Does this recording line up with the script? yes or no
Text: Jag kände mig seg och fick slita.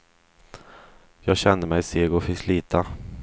yes